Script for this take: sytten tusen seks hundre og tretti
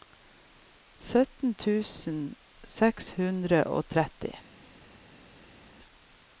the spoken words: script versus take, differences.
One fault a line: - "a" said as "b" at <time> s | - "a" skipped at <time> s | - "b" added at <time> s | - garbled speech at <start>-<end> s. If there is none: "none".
none